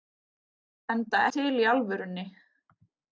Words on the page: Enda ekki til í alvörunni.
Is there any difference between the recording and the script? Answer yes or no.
yes